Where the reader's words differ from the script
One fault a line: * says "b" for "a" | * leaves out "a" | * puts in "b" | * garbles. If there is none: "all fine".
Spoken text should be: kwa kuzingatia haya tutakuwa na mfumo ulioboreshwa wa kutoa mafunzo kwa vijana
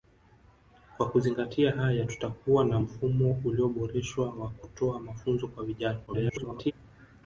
* garbles